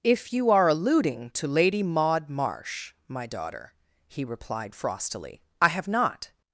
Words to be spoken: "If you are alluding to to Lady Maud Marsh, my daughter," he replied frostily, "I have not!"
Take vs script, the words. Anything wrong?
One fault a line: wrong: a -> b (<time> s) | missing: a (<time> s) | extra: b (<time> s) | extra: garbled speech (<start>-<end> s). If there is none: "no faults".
missing: to (1.5 s)